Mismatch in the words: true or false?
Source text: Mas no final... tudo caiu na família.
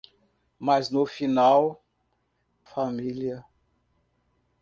true